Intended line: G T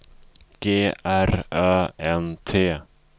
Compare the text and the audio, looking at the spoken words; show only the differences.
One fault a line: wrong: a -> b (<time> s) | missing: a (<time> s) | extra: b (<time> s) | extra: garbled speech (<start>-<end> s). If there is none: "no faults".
extra: R Ö N (1.0 s)